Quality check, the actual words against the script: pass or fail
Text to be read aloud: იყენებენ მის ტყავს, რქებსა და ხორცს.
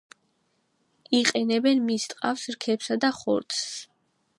pass